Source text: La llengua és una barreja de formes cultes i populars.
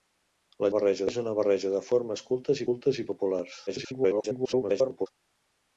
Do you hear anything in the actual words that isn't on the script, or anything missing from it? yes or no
yes